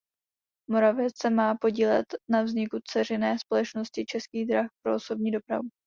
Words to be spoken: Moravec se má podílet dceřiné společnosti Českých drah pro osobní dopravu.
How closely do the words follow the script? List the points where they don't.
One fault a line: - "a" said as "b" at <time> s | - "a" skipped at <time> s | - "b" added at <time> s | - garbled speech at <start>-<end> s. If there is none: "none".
- "na vzniku" added at 2.3 s